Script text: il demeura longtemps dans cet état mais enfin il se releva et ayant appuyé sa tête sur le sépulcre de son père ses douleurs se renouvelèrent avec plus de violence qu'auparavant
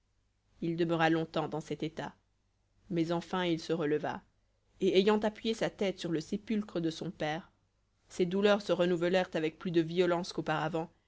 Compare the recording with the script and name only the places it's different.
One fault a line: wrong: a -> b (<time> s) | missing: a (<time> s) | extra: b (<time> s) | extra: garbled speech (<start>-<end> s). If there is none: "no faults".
no faults